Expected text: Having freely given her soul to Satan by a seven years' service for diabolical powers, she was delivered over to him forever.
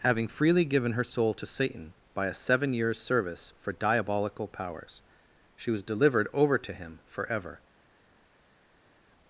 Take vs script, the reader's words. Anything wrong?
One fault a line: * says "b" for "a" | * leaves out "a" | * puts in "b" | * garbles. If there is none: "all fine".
all fine